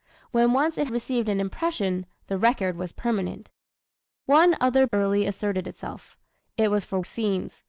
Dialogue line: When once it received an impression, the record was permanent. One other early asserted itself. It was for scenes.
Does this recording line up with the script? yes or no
yes